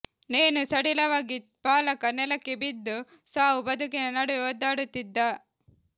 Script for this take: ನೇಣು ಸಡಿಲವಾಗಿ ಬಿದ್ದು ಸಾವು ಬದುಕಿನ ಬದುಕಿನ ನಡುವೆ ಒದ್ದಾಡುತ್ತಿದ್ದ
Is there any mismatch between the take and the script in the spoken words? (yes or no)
yes